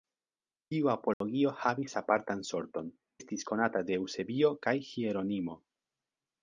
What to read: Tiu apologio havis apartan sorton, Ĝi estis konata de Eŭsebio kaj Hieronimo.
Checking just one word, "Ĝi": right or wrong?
wrong